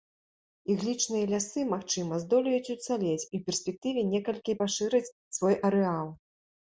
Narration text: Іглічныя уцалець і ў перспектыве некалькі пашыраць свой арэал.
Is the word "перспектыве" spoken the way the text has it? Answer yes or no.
yes